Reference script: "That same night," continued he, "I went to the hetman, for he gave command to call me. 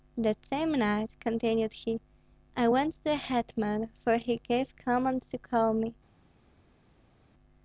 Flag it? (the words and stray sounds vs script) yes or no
no